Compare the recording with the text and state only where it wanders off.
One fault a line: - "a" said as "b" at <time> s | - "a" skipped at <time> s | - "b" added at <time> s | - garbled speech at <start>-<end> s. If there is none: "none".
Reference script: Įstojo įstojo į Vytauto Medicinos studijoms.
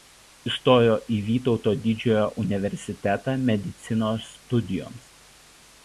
- "įstojo" skipped at 0.9 s
- "Didžiojo universitetą" added at 1.8 s